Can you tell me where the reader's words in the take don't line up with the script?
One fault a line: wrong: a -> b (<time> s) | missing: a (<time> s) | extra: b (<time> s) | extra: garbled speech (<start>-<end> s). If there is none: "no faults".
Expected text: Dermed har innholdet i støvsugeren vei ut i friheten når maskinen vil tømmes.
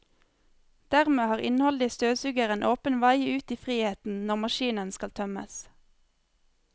extra: åpen (2.7 s)
wrong: vil -> skal (5.0 s)